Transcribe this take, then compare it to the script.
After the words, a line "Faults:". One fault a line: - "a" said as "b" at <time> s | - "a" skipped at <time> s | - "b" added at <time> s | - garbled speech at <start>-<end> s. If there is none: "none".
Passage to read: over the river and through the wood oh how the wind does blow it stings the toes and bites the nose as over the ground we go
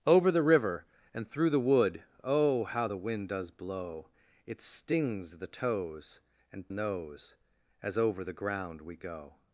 over the river and through the wood oh how the wind does blow it stings the toes and nose as over the ground we go
Faults:
- "bites the" skipped at 6.7 s